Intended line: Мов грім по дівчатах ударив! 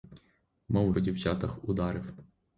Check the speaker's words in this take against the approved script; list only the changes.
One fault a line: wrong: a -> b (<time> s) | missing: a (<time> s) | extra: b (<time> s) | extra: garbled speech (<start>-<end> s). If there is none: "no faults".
missing: грім (0.9 s)